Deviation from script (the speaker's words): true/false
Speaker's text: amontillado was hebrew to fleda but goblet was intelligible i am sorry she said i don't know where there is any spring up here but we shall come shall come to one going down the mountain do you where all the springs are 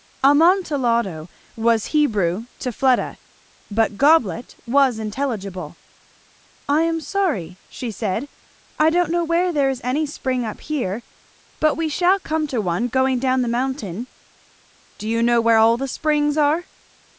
true